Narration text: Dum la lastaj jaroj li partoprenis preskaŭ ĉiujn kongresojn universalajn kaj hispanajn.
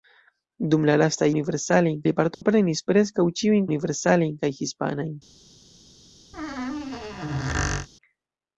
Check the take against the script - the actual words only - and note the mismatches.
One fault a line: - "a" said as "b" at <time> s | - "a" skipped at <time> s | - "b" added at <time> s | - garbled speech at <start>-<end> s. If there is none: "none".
- "jaroj" said as "universalajn" at 1.3 s
- "kongresojn" skipped at 3.7 s